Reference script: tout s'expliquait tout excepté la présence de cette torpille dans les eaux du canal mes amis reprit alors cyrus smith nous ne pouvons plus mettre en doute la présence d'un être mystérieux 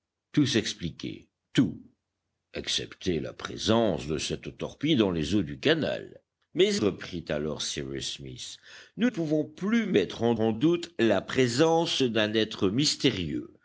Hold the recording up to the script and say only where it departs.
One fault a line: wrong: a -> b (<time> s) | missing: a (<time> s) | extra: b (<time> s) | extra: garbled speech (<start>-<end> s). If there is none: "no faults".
missing: amis (6.8 s)
missing: ne (9.1 s)
extra: en (10.4 s)